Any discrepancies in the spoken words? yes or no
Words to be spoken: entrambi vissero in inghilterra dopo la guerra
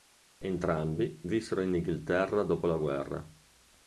no